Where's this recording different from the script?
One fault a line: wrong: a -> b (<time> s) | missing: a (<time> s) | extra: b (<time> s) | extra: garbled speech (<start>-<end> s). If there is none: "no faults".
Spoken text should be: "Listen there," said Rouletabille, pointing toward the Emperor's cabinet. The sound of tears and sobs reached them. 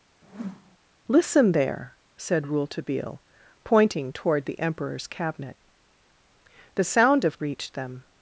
missing: tears and sobs (7.4 s)